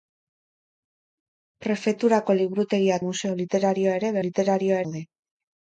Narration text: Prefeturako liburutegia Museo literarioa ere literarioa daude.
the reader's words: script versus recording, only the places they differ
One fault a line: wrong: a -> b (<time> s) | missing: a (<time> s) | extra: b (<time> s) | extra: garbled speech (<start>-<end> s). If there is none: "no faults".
no faults